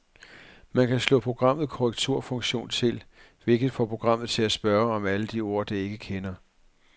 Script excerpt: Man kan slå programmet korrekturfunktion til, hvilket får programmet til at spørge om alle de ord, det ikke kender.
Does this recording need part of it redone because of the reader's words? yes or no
no